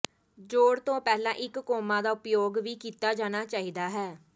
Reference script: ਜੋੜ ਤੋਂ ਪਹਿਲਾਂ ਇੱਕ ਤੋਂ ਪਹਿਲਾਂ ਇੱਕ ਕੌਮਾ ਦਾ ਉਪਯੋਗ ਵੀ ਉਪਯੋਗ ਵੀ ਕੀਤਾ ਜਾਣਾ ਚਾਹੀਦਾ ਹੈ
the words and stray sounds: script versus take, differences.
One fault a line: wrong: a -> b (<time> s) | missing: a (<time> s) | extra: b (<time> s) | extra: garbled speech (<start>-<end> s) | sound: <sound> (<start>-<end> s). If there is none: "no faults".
missing: ਤੋਂ ਪਹਿਲਾਂ ਇੱਕ (1.6 s)
missing: ਉਪਯੋਗ ਵੀ (2.8 s)